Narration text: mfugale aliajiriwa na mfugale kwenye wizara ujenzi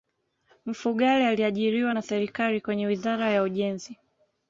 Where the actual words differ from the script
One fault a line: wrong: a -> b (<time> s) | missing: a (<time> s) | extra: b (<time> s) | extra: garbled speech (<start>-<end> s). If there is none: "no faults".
wrong: mfugale -> serikali (2.0 s)
extra: ya (3.3 s)